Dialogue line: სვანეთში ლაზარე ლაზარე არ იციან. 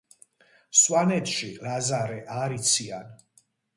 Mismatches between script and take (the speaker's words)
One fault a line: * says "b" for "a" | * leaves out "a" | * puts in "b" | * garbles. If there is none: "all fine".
* leaves out "ლაზარე"